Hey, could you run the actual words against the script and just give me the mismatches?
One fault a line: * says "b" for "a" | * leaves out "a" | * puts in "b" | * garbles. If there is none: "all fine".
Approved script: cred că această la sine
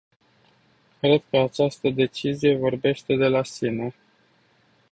* puts in "decizie vorbește de"